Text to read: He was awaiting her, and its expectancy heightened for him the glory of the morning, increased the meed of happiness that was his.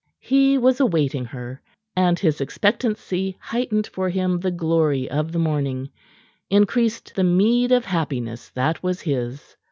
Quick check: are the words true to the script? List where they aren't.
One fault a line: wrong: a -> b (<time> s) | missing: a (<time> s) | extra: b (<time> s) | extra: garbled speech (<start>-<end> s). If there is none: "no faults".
wrong: its -> his (2.2 s)